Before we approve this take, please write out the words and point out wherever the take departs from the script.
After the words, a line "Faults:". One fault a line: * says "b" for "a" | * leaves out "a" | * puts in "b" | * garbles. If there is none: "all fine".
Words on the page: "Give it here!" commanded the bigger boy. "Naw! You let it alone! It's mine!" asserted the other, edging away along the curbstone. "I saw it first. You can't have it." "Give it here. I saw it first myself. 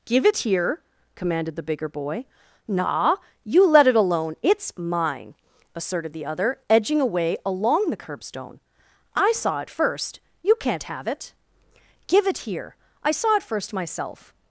"Give it here!" commanded the bigger boy. "Naw! You let it alone! It's mine!" asserted the other, edging away along the curbstone. "I saw it first. You can't have it." "Give it here. I saw it first myself.
Faults:
all fine